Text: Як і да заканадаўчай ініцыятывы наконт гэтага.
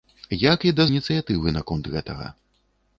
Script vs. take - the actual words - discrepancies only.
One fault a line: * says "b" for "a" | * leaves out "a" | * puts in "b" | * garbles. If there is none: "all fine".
* leaves out "заканадаўчай"